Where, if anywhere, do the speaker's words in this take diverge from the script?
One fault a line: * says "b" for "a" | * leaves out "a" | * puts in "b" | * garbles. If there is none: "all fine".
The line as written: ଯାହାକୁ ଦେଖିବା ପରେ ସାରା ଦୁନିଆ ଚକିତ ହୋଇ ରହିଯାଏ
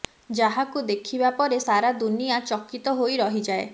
all fine